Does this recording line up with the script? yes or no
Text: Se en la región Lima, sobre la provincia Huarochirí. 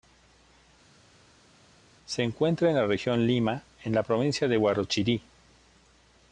no